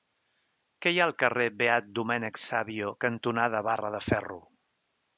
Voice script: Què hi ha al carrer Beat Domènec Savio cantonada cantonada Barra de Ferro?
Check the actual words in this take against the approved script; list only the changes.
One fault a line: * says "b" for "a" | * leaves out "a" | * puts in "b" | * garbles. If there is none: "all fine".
* leaves out "cantonada"